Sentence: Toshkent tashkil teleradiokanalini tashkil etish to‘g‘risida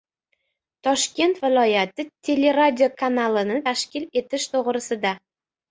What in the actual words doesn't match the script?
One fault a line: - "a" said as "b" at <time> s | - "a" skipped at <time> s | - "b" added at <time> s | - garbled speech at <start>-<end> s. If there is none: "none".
- "tashkil" said as "viloyati" at 1.4 s